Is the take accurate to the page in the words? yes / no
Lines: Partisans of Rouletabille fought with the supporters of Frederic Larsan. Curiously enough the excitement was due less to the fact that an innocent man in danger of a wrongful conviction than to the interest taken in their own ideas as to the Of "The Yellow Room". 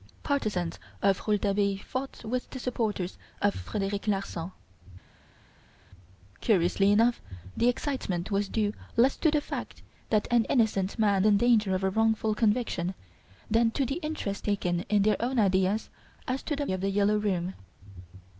yes